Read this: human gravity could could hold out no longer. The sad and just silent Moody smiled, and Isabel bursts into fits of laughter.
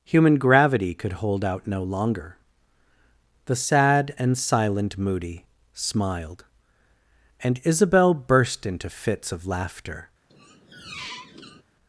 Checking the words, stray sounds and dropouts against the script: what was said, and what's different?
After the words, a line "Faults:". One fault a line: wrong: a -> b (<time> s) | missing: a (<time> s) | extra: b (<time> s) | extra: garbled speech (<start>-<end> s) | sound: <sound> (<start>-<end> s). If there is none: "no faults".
human gravity could hold out no longer. The sad and silent Moody smiled, and Isabel burst into fits of laughter.
Faults:
missing: could (1.1 s)
missing: just (4.4 s)
wrong: bursts -> burst (8.1 s)
sound: squeak (10.3-11.6 s)